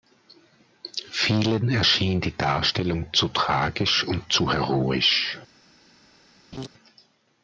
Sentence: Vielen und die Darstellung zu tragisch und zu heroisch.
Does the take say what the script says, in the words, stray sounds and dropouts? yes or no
no